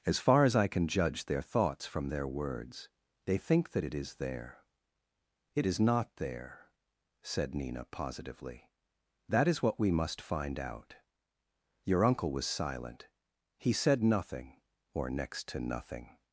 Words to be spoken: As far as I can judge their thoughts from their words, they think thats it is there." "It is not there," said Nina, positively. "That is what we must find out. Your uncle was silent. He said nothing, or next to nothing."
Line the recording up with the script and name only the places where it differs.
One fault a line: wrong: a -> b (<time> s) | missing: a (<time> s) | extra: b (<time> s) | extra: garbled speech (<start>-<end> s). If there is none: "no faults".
wrong: thats -> that (3.7 s)